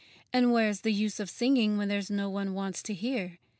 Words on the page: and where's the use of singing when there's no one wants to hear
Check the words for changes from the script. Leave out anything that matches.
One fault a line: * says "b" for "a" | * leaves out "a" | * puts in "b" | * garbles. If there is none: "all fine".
all fine